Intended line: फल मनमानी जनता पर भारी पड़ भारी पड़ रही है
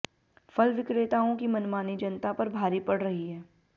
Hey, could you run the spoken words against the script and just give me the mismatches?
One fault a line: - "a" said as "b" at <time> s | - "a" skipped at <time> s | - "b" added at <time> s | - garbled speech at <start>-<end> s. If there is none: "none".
- "विक्रेताओं की" added at 0.7 s
- "भारी पड़" skipped at 3.0 s